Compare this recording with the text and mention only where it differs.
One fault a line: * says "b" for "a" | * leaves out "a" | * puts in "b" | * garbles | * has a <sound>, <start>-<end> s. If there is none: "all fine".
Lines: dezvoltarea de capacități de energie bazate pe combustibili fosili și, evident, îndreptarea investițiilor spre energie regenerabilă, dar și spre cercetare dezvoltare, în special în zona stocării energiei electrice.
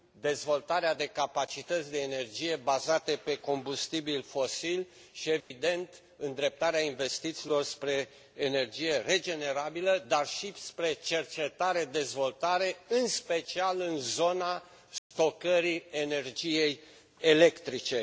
* has a dropout, 5.4-5.5 s
* has a dropout, 15.0-15.1 s